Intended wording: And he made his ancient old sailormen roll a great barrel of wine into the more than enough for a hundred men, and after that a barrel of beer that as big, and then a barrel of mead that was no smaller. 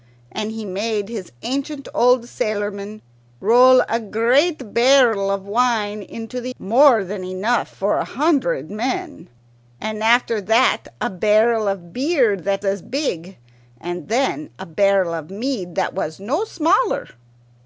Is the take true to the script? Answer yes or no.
yes